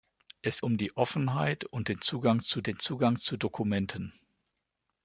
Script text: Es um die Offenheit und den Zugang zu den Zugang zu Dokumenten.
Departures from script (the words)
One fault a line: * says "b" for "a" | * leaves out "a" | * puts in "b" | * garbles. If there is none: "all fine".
all fine